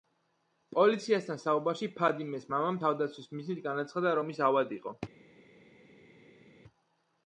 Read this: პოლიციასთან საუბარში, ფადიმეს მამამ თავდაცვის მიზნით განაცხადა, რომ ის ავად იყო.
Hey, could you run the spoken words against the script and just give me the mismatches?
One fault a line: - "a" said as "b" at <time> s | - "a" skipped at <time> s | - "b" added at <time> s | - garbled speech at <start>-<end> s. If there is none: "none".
none